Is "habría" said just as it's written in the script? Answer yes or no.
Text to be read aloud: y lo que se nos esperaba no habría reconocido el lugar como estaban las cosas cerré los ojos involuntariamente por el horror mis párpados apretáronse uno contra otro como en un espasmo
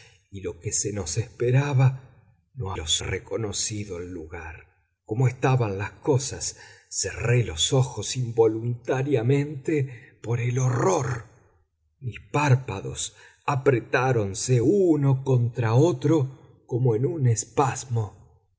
no